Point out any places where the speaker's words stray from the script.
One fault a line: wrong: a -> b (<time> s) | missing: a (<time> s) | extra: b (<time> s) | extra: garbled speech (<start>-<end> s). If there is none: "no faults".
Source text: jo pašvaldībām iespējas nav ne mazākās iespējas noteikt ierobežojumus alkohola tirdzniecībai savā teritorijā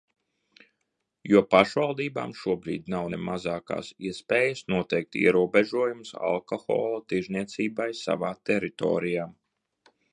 wrong: iespējas -> šobrīd (2.4 s)